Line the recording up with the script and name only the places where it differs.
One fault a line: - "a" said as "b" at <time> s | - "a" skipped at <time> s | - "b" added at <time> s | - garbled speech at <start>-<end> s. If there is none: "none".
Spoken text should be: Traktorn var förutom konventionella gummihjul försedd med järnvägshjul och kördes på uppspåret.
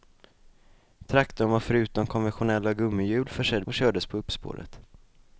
- "med järnvägshjul" skipped at 3.7 s